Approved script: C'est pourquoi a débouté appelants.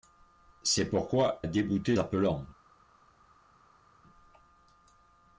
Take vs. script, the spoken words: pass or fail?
pass